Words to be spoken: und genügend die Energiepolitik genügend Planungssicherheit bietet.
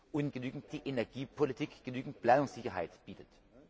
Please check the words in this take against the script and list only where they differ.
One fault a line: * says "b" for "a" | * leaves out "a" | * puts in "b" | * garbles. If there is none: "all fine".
all fine